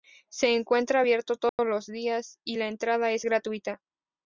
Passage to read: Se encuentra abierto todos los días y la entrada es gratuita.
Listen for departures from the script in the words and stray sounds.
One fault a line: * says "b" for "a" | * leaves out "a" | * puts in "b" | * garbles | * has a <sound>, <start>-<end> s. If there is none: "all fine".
* has a dropout, 1.5-1.6 s